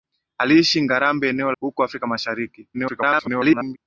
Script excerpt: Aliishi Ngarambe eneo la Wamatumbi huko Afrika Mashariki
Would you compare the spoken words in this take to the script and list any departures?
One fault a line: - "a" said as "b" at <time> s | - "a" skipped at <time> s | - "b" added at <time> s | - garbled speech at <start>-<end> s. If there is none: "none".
- "la Wamatumbi" skipped at 1.5 s
- garbled speech at 2.7-3.8 s